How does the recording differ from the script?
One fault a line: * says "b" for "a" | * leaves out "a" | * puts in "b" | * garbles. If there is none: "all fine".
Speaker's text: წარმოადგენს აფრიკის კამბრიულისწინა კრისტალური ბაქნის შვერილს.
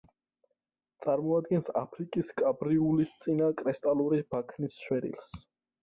all fine